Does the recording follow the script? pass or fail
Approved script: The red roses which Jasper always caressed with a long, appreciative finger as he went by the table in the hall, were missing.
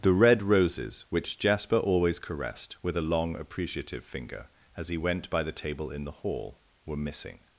pass